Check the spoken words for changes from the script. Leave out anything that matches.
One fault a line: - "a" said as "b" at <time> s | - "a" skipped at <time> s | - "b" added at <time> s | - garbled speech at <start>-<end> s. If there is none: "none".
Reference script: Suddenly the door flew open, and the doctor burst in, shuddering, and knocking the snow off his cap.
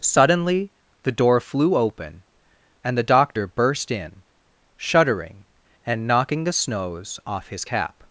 - "snow" said as "snows" at 6.5 s